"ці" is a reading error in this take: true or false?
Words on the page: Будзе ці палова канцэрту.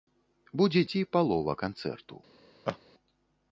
false